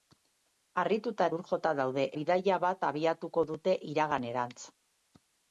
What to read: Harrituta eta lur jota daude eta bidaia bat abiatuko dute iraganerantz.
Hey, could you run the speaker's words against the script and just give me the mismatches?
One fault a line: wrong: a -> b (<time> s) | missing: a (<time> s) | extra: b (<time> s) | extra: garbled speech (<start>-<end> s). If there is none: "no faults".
missing: eta (1.3 s)
missing: eta (2.0 s)